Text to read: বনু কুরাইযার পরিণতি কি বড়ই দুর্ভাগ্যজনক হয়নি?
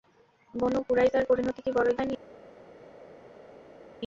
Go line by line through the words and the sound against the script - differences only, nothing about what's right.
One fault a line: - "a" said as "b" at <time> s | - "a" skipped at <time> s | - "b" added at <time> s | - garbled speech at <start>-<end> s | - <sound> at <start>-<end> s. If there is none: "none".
- "দুর্ভাগ্যজনক" skipped at 1.9 s